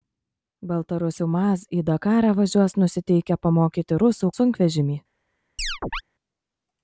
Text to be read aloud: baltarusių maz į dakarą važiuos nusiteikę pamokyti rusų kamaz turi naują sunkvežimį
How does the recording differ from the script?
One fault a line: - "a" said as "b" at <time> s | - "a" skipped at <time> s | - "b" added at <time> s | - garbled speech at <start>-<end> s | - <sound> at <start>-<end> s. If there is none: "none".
- "kamaz turi naują" skipped at 4.3 s
- chirp at 5.6-6.0 s